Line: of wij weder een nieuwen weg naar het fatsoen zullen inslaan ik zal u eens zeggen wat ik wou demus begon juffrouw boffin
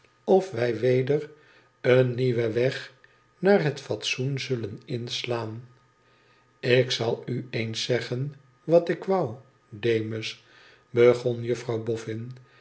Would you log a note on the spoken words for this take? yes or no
no